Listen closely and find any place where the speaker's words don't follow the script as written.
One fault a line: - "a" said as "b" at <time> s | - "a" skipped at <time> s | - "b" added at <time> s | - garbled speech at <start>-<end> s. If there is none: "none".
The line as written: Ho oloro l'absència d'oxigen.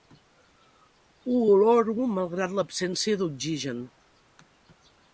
- "malgrat" added at 2.1 s